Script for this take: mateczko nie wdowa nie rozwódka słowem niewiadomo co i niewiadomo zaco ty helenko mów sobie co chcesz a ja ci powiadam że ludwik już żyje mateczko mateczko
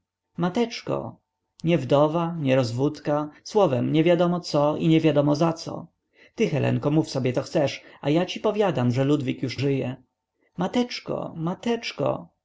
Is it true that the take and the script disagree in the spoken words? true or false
false